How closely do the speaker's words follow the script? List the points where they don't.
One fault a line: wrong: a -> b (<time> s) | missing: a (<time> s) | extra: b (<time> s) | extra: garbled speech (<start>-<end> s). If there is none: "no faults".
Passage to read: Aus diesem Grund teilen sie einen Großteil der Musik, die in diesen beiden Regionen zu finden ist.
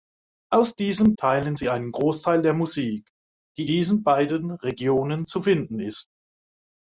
missing: Grund (1.1 s)
missing: in (3.7 s)